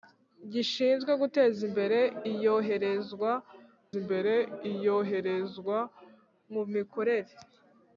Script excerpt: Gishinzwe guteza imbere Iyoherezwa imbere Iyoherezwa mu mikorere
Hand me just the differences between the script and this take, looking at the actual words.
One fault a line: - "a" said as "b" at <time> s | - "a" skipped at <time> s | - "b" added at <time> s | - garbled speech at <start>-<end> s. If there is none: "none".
none